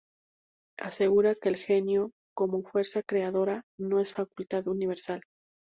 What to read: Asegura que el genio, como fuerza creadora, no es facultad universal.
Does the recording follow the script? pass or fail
pass